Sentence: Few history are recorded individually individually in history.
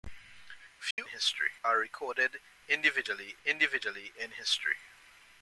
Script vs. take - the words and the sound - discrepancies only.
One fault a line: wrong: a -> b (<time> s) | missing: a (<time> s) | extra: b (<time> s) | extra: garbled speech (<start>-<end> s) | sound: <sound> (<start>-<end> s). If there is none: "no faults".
sound: dropout (0.9-1.0 s)